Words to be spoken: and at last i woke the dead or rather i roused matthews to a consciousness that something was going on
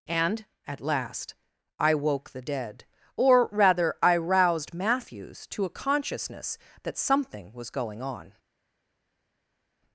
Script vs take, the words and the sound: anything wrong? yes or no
no